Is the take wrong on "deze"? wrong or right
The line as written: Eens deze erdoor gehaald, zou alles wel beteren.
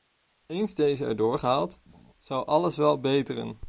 right